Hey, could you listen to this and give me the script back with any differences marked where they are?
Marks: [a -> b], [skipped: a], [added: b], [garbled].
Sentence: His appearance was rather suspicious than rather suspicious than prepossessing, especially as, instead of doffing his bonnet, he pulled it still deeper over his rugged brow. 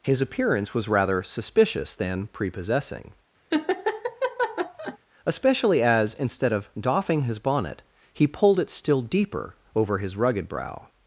His appearance was rather suspicious than [skipped: rather suspicious than] prepossessing, especially as, instead of doffing his bonnet, he pulled it still deeper over his rugged brow.